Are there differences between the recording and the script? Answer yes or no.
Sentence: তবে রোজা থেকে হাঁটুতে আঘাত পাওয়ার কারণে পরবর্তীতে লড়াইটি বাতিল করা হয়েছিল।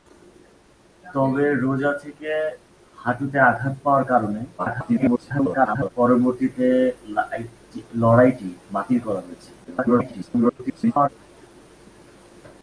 yes